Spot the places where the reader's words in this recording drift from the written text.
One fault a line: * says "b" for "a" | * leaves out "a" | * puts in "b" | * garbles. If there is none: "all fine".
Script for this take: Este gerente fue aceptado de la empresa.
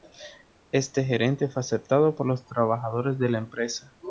* puts in "por los trabajadores"